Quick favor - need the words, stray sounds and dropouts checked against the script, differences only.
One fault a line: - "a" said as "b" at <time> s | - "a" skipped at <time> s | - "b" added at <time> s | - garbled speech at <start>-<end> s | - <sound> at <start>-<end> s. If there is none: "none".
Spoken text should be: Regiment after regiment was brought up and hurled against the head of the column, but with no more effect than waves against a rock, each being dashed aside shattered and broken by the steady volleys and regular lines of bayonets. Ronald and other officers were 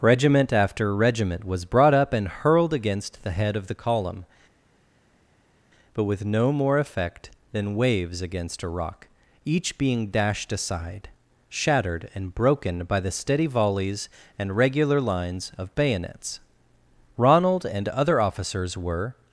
none